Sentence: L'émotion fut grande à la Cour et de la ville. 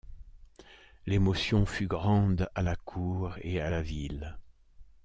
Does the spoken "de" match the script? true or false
false